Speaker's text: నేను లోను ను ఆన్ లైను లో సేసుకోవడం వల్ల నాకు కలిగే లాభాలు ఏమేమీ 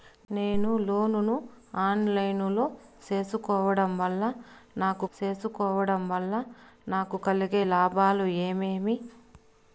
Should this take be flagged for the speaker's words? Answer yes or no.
yes